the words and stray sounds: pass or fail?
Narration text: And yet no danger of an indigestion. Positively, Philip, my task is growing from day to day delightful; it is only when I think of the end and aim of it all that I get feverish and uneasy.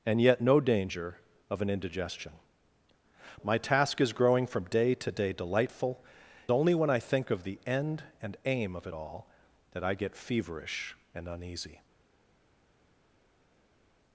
fail